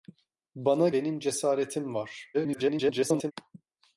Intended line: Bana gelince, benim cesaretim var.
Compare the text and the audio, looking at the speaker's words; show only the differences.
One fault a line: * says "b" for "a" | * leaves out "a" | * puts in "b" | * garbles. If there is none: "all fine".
* leaves out "gelince"
* garbles